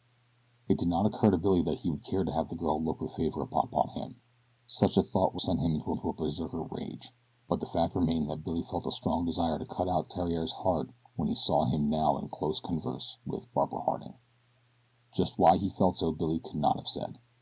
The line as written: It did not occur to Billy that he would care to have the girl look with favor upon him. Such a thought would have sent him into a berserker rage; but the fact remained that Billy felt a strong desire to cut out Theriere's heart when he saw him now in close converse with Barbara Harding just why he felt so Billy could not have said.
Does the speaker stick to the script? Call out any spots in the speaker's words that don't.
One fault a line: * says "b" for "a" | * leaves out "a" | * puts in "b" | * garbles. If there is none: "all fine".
* puts in "upon"
* leaves out "have"
* puts in "into"